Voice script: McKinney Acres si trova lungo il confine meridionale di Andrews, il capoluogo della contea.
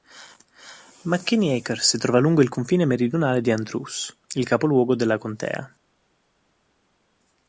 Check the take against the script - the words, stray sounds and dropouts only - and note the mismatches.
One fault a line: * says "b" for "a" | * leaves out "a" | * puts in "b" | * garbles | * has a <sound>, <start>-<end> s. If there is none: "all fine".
all fine